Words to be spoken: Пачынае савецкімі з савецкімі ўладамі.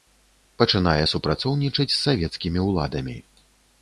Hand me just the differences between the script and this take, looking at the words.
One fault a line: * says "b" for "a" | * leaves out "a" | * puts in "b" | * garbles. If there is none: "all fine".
* says "супрацоўнічаць" for "савецкімі"